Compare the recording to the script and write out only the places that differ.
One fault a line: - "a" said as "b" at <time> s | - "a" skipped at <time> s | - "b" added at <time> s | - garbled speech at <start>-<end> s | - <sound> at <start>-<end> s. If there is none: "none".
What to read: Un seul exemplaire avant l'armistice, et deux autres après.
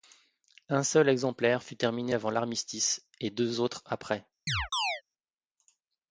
- "fut terminé" added at 1.6 s
- chirp at 4.5-5.0 s